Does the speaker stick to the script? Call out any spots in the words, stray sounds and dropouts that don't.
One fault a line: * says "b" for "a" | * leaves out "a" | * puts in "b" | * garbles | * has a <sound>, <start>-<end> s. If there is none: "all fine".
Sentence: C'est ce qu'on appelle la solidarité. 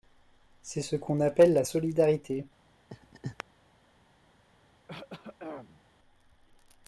* has a laugh, 2.9-3.4 s
* has a throat clearing, 4.9-5.8 s